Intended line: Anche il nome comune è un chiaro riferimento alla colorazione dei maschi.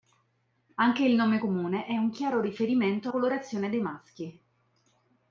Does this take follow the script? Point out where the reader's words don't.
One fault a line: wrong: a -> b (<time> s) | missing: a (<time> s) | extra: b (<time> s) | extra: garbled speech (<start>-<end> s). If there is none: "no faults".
missing: alla (3.1 s)